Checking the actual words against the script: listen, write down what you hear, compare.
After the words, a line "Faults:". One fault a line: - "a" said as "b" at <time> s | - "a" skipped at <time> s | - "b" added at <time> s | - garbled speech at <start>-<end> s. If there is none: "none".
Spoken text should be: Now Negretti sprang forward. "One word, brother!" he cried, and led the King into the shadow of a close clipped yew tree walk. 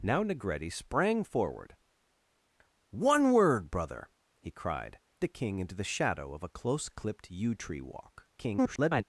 Now Negretti sprang forward. "One word, brother!" he cried, the King into the shadow of a close clipped yew tree walk. [garbled]
Faults:
- "and led" skipped at 5.0 s
- garbled speech at 8.4-9.0 s